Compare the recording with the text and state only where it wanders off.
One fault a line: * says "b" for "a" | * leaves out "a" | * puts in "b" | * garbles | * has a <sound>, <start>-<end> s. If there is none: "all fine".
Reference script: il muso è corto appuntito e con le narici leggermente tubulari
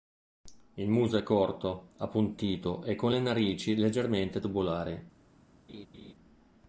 * has a laugh, 5.7-6.1 s